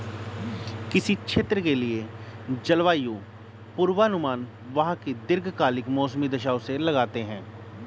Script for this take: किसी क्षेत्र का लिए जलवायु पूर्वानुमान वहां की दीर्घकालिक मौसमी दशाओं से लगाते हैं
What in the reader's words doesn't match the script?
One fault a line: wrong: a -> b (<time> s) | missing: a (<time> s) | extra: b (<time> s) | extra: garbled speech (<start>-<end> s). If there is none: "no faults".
wrong: का -> के (1.6 s)